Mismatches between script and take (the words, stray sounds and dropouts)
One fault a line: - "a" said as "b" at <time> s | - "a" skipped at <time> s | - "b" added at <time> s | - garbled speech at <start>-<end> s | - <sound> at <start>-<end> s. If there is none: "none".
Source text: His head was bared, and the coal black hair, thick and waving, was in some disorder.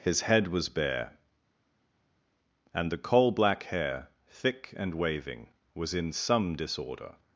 - "bared" said as "bare" at 0.7 s